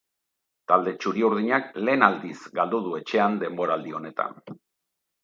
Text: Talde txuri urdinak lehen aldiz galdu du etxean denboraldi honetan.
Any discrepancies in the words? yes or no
no